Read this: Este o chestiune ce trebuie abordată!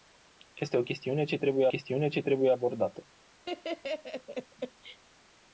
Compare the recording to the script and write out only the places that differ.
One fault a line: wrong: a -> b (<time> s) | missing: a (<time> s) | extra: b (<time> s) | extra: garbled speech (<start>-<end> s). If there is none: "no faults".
extra: chestiune ce trebuie (1.7 s)